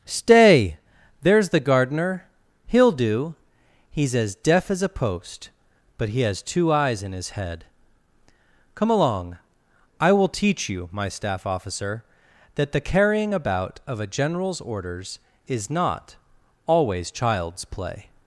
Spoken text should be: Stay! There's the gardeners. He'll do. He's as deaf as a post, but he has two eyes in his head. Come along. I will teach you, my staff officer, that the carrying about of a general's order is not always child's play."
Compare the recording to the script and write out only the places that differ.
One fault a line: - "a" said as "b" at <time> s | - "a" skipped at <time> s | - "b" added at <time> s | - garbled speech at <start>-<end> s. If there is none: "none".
- "gardeners" said as "gardener" at 1.6 s
- "order" said as "orders" at 14.6 s